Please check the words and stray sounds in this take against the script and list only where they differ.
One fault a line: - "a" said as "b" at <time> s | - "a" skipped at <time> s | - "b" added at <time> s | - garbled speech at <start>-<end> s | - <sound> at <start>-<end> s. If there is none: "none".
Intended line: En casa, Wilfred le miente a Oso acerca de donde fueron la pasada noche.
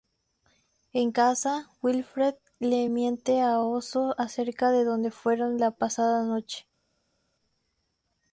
none